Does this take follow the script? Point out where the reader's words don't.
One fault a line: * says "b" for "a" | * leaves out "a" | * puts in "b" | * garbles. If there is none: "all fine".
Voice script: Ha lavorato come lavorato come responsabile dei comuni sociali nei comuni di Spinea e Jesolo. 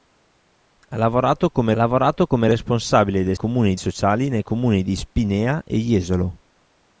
all fine